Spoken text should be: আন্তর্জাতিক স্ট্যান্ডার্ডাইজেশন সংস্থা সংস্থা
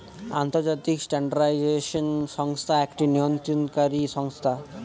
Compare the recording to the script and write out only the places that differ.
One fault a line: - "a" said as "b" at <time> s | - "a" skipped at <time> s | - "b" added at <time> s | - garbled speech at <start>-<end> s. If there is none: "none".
- "একটি নিয়ন্ত্রণকারী" added at 2.8 s